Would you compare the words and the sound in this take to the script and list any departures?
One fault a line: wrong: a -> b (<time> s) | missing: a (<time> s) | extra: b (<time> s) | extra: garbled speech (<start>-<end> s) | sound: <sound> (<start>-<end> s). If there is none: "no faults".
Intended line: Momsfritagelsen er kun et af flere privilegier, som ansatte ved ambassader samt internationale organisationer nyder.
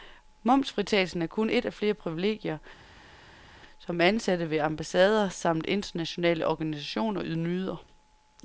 no faults